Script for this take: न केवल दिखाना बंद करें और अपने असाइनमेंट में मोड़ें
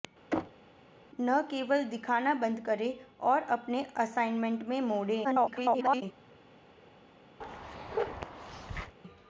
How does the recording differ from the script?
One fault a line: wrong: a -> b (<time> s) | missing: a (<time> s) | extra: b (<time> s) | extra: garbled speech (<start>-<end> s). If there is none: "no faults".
extra: garbled speech (5.2-6.0 s)